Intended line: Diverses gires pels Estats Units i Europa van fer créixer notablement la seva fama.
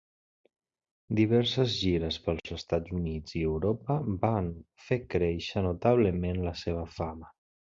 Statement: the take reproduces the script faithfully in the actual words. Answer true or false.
true